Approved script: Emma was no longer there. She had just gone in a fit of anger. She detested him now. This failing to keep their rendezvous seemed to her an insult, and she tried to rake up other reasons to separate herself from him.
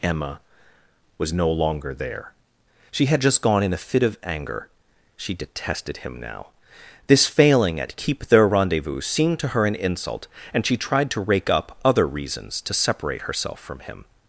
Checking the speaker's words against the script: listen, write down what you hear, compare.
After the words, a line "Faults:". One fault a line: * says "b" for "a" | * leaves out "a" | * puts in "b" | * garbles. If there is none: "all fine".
Emma was no longer there. She had just gone in a fit of anger. She detested him now. This failing at keep their rendezvous seemed to her an insult, and she tried to rake up other reasons to separate herself from him.
Faults:
* says "at" for "to"